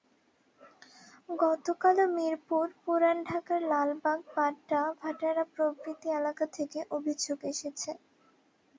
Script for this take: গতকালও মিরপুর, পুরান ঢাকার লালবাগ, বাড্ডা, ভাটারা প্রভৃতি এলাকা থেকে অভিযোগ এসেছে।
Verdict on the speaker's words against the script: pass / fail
pass